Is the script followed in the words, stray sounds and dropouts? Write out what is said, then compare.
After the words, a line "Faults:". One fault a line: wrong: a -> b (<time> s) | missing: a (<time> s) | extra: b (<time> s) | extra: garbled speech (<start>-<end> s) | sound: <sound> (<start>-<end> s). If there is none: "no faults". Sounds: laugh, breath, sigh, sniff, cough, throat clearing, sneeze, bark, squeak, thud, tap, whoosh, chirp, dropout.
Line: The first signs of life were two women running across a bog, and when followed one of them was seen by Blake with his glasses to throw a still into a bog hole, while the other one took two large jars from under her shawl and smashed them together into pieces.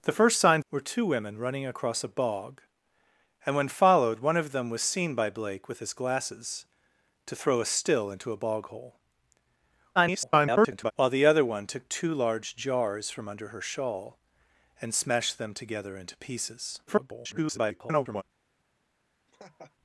The first signs were two women running across a bog, and when followed one of them was seen by Blake with his glasses to throw a still into a bog hole, [garbled] while the other one took two large jars from under her shawl and smashed them together into pieces. [garbled]
Faults:
missing: of life (0.7 s)
extra: garbled speech (10.0-10.9 s)
extra: garbled speech (16.9-18.2 s)
sound: laugh (19.3-19.8 s)